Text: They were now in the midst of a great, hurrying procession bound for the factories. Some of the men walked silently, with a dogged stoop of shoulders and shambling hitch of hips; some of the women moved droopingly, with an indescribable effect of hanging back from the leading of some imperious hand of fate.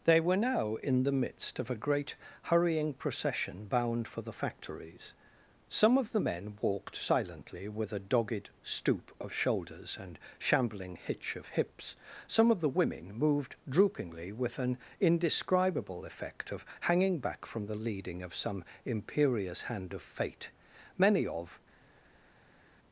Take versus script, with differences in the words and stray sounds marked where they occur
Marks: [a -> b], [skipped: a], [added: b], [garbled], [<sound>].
They were now in the midst of a great, hurrying procession bound for the factories. Some of the men walked silently, with a dogged stoop of shoulders and shambling hitch of hips; some of the women moved droopingly, with an indescribable effect of hanging back from the leading of some imperious hand of fate. [added: Many of]